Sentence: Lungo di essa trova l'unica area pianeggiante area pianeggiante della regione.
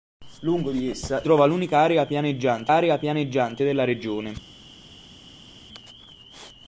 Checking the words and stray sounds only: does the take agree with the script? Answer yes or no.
yes